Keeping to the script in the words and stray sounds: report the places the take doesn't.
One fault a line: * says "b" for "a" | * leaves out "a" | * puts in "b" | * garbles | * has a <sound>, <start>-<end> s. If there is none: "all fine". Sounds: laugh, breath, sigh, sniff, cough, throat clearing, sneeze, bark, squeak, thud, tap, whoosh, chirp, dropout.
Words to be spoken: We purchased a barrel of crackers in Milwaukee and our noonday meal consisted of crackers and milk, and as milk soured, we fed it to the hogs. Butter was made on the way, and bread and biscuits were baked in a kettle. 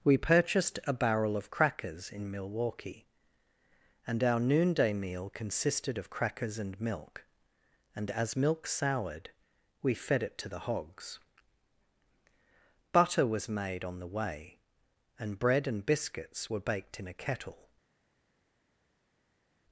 all fine